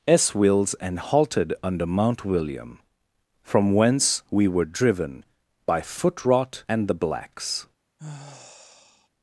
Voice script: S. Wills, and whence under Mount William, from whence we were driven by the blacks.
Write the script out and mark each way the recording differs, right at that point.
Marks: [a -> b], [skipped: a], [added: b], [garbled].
S. Wills, and [whence -> halted] under Mount William, from whence we were driven by [added: foot rot and] the blacks.